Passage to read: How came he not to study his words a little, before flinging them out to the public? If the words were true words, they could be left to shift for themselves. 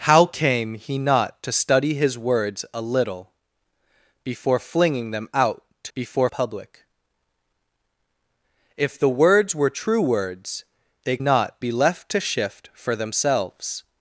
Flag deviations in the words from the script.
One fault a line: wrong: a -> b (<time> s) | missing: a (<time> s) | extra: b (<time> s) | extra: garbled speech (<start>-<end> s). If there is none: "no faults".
wrong: the -> before (5.9 s)
wrong: could -> not (11.2 s)